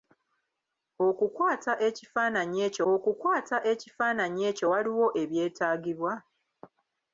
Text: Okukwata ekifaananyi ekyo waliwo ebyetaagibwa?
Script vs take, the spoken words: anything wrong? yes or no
yes